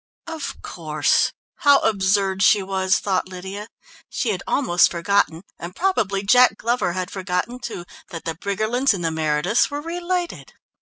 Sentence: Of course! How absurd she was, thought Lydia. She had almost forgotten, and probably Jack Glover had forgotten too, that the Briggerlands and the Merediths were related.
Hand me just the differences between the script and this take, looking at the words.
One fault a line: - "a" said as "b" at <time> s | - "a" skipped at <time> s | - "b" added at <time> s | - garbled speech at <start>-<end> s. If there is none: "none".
none